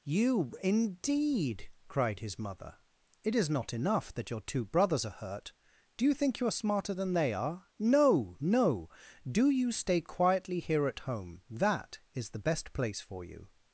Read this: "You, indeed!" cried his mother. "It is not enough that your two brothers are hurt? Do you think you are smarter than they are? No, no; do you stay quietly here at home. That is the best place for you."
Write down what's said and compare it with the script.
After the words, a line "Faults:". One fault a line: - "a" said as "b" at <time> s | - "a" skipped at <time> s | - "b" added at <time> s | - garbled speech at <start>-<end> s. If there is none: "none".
"You, indeed!" cried his mother. "It is not enough that your two brothers are hurt? Do you think you are smarter than they are? No, no; do you stay quietly here at home. That is the best place for you."
Faults:
none